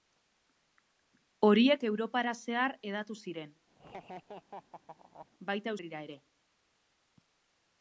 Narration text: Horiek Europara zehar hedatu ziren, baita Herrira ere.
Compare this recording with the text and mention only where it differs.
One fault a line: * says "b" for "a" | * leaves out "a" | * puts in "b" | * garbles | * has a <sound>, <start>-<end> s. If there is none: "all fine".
* has a laugh, 3.8-5.3 s